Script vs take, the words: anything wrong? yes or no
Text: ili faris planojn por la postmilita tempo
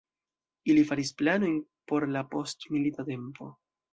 no